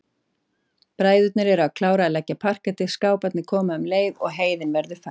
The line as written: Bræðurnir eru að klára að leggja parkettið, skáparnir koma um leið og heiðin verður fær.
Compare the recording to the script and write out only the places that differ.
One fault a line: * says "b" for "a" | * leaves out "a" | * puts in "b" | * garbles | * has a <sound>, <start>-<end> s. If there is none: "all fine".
all fine